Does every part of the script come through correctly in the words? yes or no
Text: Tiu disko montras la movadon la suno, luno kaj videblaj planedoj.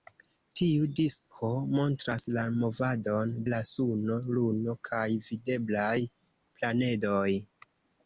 yes